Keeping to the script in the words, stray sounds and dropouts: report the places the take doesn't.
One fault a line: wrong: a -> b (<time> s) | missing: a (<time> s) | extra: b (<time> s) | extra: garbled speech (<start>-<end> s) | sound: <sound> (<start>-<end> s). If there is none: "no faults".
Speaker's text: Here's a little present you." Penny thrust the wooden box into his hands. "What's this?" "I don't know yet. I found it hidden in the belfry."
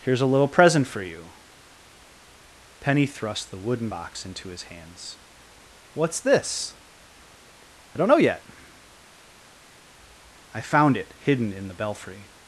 extra: for (0.9 s)